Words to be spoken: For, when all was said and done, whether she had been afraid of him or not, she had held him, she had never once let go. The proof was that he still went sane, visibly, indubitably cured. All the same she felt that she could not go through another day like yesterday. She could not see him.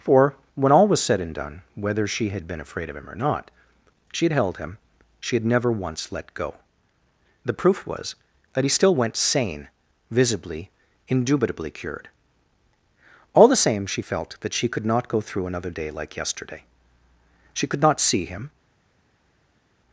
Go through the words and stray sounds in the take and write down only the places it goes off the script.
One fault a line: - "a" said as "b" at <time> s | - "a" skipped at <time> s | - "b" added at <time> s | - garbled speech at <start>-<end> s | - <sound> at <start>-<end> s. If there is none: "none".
none